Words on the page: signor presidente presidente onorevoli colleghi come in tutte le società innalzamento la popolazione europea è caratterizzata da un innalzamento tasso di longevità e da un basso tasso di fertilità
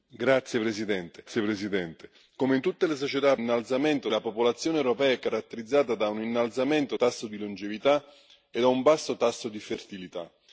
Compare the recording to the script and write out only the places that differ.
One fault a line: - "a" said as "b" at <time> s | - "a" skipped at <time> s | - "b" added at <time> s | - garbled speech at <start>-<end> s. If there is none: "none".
none